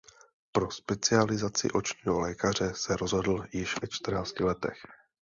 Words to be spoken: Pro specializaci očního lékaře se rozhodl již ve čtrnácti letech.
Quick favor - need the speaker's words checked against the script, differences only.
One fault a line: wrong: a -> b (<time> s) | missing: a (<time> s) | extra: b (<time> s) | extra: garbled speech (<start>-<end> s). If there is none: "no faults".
no faults